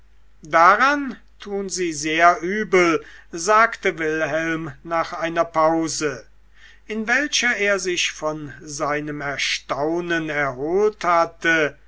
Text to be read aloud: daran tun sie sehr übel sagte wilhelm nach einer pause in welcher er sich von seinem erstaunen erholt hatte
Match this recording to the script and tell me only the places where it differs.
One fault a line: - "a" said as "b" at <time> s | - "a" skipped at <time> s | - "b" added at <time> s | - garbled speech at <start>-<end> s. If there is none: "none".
none